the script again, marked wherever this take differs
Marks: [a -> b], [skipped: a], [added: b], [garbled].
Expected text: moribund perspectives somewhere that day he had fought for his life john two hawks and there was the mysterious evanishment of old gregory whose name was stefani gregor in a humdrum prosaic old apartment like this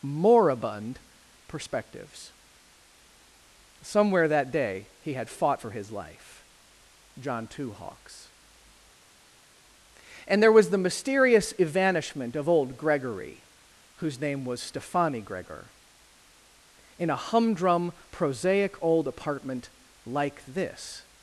moribund perspectives somewhere that day he had fought for his life john two hawks and there was the mysterious evanishment of old gregory whose name was stefani gregor in a humdrum prosaic old apartment like this